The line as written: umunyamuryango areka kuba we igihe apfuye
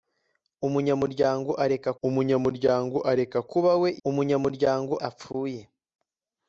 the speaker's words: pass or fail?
fail